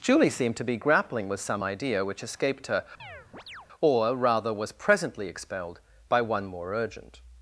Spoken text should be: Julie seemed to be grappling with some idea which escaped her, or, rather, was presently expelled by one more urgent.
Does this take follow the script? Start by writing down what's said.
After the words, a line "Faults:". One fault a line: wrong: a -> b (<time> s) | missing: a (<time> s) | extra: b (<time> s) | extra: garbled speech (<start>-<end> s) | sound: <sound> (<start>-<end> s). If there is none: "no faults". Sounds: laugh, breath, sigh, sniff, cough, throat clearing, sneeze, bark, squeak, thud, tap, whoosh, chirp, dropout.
Julie seemed to be grappling with some idea which escaped her, or, rather, was presently expelled by one more urgent.
Faults:
sound: chirp (3.0-3.7 s)